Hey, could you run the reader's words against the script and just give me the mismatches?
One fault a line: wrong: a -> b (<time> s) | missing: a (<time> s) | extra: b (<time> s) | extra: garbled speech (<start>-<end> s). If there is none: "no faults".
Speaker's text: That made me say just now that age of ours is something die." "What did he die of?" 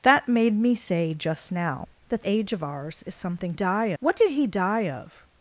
no faults